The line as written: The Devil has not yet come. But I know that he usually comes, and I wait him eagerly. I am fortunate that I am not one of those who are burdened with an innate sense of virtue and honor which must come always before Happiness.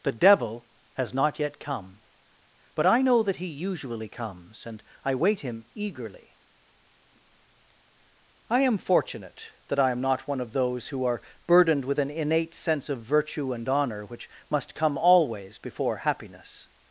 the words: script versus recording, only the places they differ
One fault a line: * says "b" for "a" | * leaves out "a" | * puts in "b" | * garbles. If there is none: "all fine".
all fine